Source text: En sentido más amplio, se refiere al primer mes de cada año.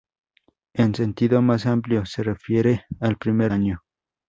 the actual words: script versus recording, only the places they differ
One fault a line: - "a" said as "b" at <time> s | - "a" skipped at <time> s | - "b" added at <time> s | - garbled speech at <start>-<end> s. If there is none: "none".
- "mes de cada" skipped at 3.5 s